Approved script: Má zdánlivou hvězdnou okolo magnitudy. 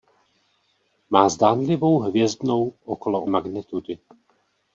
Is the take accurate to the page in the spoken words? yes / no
yes